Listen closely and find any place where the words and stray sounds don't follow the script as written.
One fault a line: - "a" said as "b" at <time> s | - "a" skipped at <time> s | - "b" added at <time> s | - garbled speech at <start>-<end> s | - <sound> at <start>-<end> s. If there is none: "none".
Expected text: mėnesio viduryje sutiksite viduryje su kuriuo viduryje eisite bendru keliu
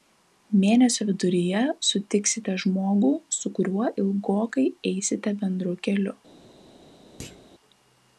- "viduryje" said as "žmogų" at 2.6 s
- "viduryje" said as "ilgokai" at 4.0 s
- thud at 7.2-7.5 s